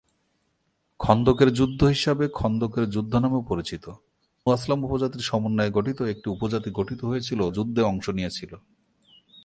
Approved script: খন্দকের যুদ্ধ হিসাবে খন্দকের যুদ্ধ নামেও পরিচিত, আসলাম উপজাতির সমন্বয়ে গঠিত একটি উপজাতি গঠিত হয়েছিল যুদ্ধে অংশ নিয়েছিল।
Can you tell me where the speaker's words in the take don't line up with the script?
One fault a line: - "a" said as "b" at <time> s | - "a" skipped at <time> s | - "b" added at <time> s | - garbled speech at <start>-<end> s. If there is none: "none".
none